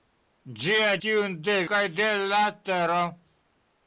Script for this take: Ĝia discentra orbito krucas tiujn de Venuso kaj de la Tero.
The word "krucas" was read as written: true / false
false